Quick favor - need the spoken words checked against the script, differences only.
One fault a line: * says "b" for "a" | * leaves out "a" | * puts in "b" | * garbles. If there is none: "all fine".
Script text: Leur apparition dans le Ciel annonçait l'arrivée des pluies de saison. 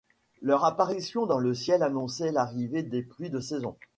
all fine